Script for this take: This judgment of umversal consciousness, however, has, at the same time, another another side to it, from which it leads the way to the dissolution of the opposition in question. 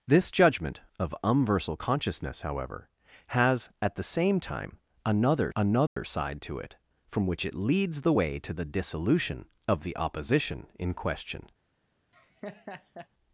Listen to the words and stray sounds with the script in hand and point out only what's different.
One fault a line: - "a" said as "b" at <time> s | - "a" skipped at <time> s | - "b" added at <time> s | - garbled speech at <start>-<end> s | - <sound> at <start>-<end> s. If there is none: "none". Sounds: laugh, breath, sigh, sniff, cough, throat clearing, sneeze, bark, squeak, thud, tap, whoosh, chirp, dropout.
- dropout at 5.9-6.0 s
- laugh at 12.1-13.1 s